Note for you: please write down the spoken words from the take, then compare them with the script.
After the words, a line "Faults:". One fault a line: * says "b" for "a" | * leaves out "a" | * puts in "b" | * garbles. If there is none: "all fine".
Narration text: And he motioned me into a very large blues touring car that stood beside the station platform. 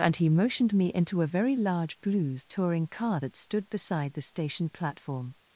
And he motioned me into a very large blues touring car that stood beside the station platform.
Faults:
all fine